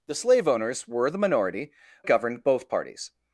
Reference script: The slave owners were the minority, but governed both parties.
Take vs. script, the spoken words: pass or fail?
fail